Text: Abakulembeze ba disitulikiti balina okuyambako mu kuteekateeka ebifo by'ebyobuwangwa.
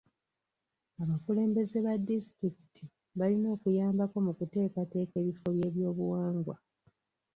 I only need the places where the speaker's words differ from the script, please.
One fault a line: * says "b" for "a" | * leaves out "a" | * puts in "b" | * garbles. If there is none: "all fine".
all fine